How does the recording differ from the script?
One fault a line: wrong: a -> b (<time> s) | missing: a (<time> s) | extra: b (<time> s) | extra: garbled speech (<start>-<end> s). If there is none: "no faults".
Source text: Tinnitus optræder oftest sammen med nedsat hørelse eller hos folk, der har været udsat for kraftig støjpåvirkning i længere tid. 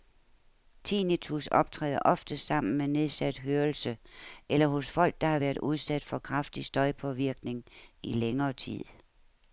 no faults